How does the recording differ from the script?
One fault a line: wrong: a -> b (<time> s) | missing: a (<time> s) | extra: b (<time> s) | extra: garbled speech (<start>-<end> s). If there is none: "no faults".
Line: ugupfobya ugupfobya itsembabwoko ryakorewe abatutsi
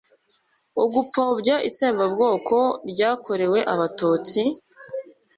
missing: ugupfobya (1.6 s)